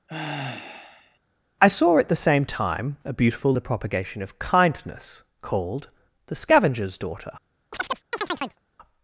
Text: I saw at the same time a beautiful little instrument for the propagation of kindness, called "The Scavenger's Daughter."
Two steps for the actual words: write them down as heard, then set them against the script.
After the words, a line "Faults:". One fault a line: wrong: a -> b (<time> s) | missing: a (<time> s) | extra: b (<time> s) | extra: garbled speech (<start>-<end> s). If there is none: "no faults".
I saw at the same time a beautiful the propagation of kindness, called "The Scavenger's Daughter."
Faults:
missing: little instrument for (3.5 s)